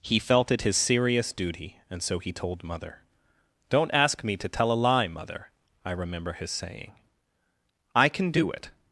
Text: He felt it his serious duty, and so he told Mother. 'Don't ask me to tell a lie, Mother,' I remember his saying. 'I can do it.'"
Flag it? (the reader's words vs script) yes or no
no